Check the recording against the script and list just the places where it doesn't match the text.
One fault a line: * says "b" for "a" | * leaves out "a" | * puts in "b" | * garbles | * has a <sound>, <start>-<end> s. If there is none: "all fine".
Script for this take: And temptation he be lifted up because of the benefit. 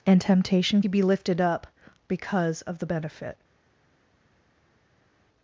all fine